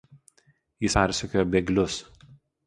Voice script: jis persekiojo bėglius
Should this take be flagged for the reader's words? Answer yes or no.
no